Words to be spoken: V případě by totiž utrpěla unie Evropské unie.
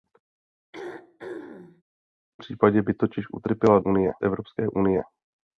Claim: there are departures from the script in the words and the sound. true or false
true